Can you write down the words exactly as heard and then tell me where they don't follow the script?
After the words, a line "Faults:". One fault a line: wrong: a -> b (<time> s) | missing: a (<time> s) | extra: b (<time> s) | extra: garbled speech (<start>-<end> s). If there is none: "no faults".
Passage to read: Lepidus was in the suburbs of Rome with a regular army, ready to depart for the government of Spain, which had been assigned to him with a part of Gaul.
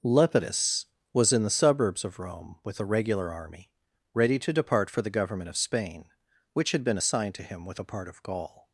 Lepidus was in the suburbs of Rome with a regular army, ready to depart for the government of Spain, which had been assigned to him with a part of Gaul.
Faults:
no faults